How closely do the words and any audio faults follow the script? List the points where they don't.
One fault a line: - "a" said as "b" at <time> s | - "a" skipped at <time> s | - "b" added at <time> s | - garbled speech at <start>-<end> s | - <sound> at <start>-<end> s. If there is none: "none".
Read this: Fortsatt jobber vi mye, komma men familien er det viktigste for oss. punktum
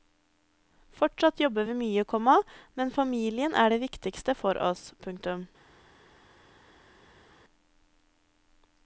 none